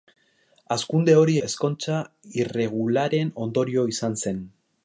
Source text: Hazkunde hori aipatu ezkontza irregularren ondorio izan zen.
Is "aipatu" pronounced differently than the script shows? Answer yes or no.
yes